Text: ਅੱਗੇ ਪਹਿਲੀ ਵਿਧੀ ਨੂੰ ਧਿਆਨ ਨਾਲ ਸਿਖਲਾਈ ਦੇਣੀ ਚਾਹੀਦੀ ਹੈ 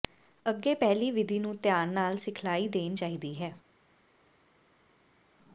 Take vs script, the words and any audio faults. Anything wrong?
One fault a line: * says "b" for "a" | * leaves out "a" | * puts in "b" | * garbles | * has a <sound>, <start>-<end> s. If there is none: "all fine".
all fine